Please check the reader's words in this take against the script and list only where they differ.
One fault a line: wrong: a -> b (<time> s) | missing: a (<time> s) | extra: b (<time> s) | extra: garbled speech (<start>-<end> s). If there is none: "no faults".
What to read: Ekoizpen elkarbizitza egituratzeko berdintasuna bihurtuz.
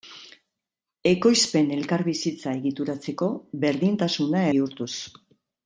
no faults